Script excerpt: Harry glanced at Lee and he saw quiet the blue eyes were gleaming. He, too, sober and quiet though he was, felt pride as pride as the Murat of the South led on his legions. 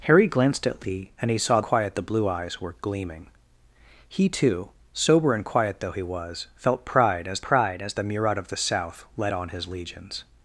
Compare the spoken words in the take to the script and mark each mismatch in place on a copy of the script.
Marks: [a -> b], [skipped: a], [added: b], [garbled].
Harry glanced at Lee and he saw quiet the blue eyes were gleaming. He, too, sober and quiet though he was, felt pride as pride as the Murat of the South led on his legions.